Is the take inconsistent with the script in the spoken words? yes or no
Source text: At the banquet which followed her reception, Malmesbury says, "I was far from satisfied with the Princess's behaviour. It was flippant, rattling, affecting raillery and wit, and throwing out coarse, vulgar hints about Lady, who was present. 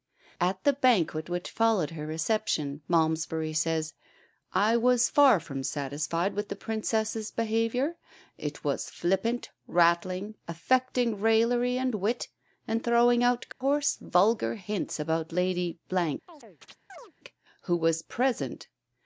no